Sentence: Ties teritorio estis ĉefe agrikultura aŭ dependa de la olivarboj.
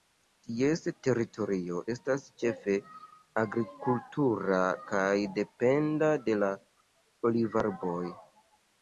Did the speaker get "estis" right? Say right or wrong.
wrong